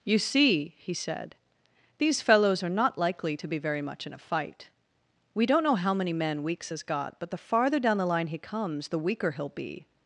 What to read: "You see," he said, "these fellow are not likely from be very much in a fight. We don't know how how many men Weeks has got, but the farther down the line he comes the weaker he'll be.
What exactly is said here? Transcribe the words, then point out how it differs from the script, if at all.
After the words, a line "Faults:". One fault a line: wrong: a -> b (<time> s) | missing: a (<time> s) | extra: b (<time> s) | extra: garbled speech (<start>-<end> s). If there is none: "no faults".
"You see," he said, "these fellows are not likely to be very much in a fight. We don't know how many men Weeks has got, but the farther down the line he comes the weaker he'll be.
Faults:
wrong: fellow -> fellows (2.2 s)
wrong: from -> to (3.3 s)
missing: how (5.9 s)